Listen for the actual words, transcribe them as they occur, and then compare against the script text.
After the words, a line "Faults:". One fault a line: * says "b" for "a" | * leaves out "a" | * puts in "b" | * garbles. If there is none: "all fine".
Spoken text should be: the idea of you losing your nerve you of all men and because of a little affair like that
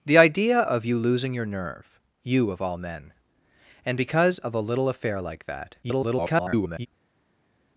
the idea of you losing your nerve you of all men and because of a little affair like that [garbled]
Faults:
* garbles